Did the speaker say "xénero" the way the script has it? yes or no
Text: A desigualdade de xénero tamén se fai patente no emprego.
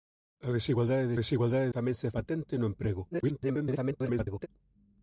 no